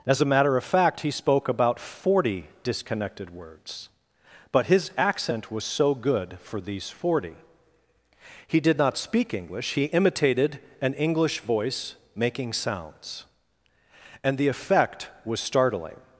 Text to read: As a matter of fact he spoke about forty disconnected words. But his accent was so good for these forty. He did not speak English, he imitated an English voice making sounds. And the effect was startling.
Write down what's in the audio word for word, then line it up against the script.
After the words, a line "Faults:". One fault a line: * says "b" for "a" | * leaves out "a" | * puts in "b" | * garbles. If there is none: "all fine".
As a matter of fact he spoke about forty disconnected words. But his accent was so good for these forty. He did not speak English, he imitated an English voice making sounds. And the effect was startling.
Faults:
all fine